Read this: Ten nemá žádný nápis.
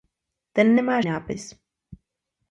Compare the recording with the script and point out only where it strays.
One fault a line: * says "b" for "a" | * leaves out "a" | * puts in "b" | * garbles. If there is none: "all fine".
* leaves out "žádný"